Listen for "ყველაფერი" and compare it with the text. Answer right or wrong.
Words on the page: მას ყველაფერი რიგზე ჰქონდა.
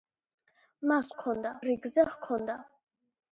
wrong